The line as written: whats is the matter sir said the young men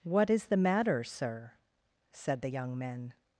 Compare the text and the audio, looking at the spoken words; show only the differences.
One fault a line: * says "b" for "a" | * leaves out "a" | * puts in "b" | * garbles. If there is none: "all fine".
* says "what" for "whats"